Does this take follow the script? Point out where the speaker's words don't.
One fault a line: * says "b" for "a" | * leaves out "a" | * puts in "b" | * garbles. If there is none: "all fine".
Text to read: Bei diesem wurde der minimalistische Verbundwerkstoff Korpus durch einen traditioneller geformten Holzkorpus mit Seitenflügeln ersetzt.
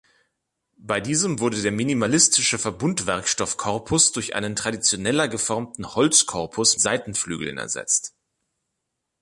* leaves out "mit"